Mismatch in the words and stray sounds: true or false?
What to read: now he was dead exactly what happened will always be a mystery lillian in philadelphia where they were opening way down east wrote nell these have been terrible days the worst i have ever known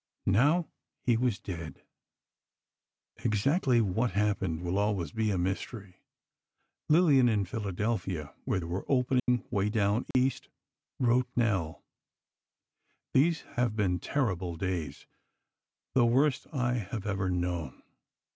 true